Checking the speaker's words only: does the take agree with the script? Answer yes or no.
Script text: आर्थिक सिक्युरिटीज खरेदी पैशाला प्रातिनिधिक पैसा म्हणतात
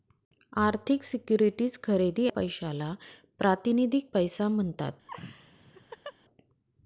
yes